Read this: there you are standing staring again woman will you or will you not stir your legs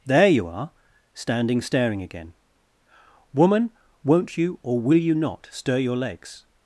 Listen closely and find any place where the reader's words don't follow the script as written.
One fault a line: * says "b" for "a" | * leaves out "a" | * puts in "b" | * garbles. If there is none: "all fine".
* says "won't" for "will"